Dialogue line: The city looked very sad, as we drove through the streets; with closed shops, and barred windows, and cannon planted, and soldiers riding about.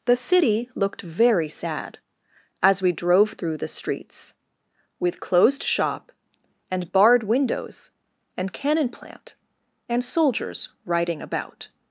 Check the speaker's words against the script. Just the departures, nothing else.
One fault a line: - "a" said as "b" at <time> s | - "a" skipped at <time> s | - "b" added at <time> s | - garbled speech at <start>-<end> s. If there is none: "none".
- "shops" said as "shop" at 5.6 s
- "planted" said as "plant" at 8.9 s